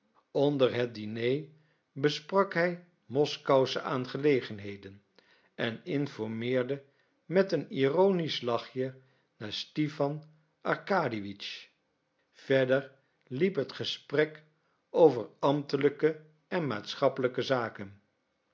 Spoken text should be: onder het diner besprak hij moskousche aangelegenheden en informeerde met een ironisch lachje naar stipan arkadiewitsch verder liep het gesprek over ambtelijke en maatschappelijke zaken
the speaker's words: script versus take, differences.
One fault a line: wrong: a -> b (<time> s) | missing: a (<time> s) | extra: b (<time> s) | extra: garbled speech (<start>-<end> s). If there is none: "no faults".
no faults